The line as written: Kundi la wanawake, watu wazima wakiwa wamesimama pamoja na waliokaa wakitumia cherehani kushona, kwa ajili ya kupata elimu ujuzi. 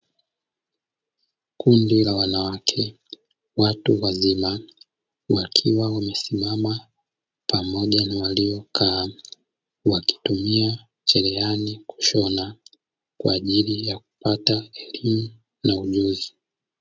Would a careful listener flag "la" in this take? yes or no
no